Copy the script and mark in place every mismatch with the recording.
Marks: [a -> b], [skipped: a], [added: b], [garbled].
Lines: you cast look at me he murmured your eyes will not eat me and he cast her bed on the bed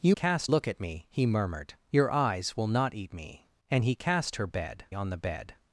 you cast look at me he murmured your eyes will not eat me and he cast her bed on the bed